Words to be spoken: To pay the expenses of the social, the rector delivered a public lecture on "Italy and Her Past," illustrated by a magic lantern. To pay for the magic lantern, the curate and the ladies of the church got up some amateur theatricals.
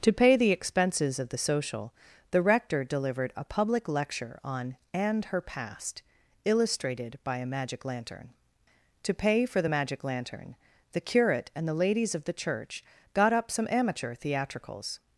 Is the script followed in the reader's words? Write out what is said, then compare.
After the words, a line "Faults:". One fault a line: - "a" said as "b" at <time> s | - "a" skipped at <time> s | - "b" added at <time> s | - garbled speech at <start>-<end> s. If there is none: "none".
To pay the expenses of the social, the rector delivered a public lecture on "and Her Past," illustrated by a magic lantern. To pay for the magic lantern, the curate and the ladies of the church got up some amateur theatricals.
Faults:
- "Italy" skipped at 4.8 s